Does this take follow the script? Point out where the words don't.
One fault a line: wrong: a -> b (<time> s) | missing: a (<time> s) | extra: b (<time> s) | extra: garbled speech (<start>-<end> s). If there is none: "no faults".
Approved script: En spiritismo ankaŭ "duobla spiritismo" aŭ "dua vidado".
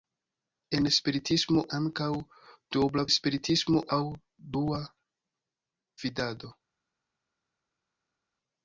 no faults